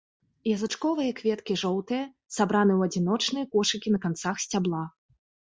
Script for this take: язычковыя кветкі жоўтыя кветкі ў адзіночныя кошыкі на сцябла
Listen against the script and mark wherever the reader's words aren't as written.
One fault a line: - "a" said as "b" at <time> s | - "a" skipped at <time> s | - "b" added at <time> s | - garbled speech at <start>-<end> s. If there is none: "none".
- "кветкі" said as "сабраны" at 2.4 s
- "канцах" added at 4.1 s